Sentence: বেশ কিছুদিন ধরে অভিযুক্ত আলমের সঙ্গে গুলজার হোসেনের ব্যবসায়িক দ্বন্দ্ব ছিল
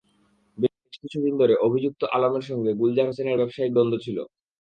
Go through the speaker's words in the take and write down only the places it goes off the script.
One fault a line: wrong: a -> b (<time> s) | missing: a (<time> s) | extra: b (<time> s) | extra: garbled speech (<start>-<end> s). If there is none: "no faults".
no faults